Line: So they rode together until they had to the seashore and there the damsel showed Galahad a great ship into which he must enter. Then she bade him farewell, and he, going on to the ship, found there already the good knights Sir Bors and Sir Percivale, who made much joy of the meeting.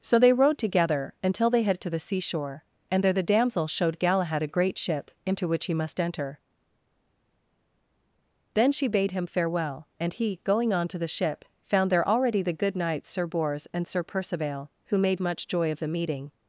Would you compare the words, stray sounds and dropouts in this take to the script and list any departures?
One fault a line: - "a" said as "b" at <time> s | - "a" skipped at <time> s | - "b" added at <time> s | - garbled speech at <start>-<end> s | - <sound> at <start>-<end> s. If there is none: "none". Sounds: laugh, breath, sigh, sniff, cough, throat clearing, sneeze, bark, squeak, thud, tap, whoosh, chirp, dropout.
none